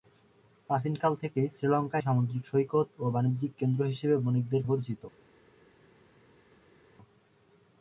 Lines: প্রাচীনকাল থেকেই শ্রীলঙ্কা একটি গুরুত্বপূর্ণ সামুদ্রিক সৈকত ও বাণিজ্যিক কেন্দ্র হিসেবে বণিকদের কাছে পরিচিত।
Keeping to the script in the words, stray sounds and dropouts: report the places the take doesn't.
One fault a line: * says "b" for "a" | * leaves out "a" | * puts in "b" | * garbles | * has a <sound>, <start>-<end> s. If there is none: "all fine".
* leaves out "একটি গুরুত্বপূর্ণ"
* leaves out "কাছে"